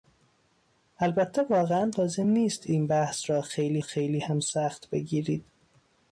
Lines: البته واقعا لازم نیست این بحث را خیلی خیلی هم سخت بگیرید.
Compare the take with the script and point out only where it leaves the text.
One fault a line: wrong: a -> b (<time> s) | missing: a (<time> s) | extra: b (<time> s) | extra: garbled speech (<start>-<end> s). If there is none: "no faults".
no faults